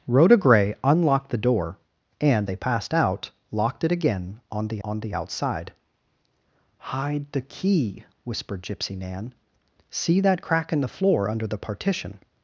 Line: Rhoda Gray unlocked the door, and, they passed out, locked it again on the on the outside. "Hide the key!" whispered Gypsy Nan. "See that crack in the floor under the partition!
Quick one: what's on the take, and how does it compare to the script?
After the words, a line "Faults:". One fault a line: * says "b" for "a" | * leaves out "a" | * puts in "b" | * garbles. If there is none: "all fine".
Rhoda Gray unlocked the door, and, they passed out, locked it again on the on the outside. "Hide the key!" whispered Gypsy Nan. "See that crack in the floor under the partition!
Faults:
all fine